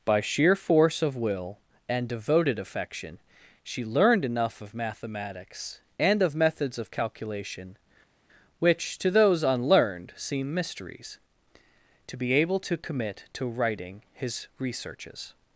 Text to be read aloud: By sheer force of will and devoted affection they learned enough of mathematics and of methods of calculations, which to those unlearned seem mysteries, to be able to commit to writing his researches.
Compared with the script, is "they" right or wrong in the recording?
wrong